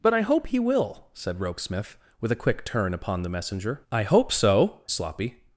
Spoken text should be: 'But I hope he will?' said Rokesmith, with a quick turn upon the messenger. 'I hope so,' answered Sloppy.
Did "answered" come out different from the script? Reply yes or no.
yes